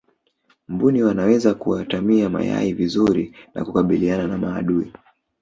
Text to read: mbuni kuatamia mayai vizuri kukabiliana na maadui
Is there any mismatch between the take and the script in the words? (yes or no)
yes